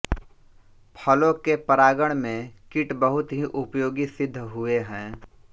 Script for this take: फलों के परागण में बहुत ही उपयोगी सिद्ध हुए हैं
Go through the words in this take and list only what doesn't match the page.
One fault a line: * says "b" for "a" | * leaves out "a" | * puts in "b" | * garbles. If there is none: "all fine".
* puts in "कीट"